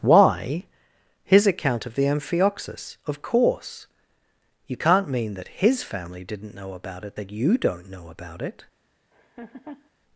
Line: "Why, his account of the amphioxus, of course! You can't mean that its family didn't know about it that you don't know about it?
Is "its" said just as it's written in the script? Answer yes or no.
no